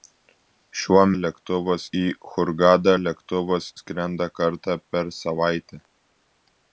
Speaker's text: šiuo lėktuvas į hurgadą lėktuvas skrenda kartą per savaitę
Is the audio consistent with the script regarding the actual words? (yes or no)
yes